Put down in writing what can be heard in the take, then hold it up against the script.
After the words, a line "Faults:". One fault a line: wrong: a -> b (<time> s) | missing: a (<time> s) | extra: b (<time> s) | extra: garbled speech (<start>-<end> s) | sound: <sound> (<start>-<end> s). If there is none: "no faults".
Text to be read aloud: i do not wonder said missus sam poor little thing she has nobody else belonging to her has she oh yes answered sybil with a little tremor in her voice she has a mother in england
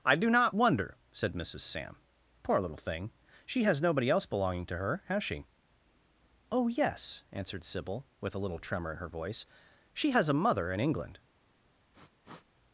i do not wonder said missus sam poor little thing she has nobody else belonging to her has she oh yes answered sybil with a little tremor in her voice she has a mother in england
Faults:
sound: sniff (11.9-12.5 s)